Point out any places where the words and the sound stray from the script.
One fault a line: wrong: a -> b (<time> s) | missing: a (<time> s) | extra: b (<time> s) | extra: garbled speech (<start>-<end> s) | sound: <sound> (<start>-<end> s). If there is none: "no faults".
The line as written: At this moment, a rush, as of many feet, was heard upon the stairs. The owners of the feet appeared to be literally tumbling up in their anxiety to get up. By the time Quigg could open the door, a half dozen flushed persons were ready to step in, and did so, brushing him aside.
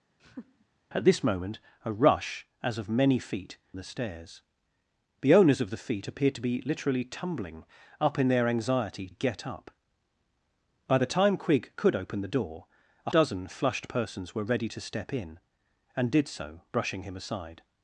sound: laugh (0.2-0.7 s)
missing: was heard upon (3.6 s)
missing: to (9.1 s)
missing: half (13.1 s)